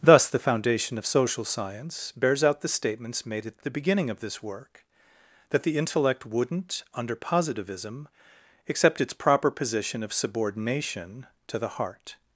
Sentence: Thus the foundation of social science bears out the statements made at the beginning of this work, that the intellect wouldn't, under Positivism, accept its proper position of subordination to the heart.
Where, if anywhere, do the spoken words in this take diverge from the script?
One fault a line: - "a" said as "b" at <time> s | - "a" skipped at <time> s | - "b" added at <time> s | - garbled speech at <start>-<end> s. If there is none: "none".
none